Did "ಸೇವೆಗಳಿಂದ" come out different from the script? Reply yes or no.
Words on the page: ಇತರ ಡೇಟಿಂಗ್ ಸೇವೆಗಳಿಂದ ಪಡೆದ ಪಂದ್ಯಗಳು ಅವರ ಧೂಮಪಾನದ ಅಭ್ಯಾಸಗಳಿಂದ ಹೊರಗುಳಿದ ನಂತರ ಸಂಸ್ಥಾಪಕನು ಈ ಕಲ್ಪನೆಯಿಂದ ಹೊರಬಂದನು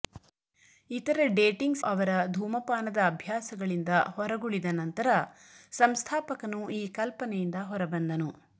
yes